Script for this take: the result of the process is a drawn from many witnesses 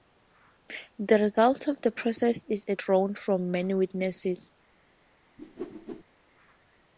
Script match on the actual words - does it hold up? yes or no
yes